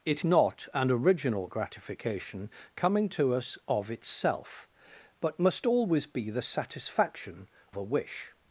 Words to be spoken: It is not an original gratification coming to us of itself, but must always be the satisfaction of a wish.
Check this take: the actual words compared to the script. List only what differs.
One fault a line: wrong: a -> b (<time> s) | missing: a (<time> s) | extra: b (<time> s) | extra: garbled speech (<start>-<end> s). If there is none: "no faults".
missing: is (0.2 s)
missing: of (7.5 s)